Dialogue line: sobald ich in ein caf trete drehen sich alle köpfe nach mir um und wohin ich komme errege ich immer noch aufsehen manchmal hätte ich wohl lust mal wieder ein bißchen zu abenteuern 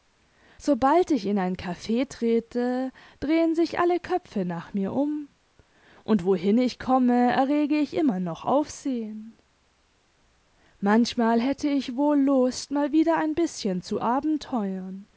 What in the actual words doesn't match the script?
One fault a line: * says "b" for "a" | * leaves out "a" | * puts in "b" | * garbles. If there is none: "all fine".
all fine